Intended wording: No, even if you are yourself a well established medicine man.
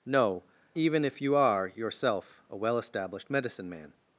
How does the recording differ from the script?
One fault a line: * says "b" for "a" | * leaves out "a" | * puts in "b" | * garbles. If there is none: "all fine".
all fine